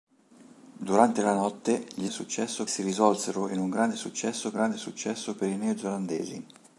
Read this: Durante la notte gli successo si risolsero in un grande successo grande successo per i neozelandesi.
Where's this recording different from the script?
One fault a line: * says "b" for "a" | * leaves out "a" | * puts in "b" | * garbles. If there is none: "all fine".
all fine